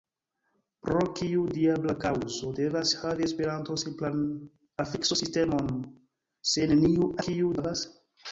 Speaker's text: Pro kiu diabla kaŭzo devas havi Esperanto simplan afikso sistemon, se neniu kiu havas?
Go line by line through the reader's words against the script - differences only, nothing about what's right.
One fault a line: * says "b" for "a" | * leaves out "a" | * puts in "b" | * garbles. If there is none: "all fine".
all fine